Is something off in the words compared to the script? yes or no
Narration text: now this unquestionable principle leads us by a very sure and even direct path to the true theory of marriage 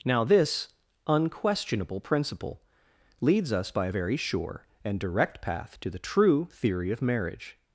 yes